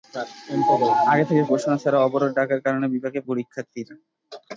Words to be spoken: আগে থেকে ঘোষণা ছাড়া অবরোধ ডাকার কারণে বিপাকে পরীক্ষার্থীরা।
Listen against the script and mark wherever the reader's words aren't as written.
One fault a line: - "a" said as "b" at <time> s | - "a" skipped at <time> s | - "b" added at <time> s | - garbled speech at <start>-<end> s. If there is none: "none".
none